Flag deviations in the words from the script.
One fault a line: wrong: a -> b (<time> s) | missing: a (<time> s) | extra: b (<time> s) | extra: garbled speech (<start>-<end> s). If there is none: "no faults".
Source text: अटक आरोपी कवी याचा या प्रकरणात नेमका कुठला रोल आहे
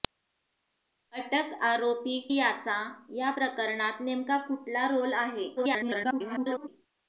missing: कवी (2.2 s)
extra: garbled speech (5.6-6.7 s)